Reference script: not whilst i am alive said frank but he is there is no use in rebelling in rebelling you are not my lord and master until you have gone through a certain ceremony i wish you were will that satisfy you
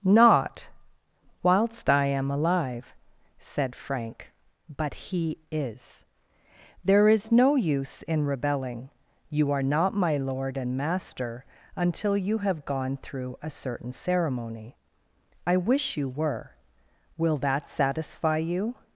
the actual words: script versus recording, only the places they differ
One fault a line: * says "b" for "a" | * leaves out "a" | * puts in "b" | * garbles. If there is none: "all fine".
* leaves out "in rebelling"